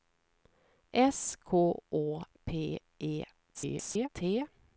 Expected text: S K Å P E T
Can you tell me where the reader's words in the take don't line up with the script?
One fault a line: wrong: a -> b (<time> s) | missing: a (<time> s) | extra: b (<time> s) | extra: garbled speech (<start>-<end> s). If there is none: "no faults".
extra: garbled speech (3.5-4.1 s)